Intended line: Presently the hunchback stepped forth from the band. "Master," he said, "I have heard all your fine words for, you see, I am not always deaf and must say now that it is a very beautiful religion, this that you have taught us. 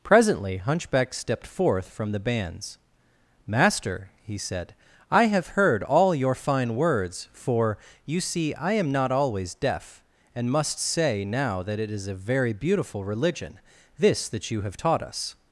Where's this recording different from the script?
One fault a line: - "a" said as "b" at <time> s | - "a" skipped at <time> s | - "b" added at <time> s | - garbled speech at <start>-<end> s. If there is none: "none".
- "the" skipped at 0.6 s
- "band" said as "bands" at 2.2 s